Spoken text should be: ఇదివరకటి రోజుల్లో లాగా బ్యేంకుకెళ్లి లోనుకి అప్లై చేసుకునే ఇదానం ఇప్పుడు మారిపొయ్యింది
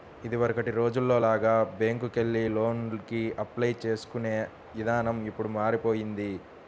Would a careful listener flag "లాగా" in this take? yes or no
no